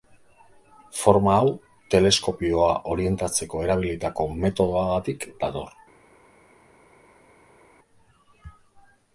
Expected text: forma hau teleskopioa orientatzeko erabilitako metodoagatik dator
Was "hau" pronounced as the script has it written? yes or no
yes